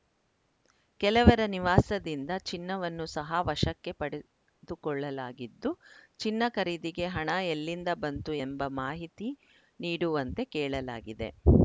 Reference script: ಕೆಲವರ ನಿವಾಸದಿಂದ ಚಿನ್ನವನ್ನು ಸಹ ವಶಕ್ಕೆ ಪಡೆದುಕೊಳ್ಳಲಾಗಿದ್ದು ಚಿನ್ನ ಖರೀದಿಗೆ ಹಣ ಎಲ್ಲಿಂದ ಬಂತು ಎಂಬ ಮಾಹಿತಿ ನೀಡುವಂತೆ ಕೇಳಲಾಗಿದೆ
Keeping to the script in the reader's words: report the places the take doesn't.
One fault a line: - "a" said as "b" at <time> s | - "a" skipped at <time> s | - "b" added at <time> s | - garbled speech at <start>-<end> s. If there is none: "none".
none